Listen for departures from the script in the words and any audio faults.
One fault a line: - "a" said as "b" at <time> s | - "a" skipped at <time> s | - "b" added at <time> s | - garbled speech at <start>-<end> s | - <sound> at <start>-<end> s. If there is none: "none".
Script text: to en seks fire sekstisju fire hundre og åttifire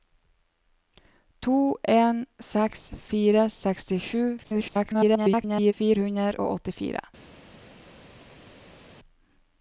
- garbled speech at 4.4-5.7 s